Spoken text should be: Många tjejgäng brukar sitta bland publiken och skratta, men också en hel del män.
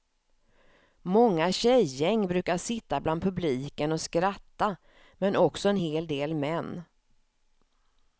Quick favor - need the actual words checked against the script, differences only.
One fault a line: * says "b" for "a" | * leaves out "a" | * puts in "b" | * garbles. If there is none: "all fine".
all fine